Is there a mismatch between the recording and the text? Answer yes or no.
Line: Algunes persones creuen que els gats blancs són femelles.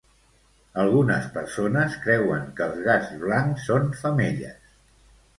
no